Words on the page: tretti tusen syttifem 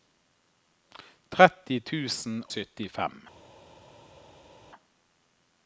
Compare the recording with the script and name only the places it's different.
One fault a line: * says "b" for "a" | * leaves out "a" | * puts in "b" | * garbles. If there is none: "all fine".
all fine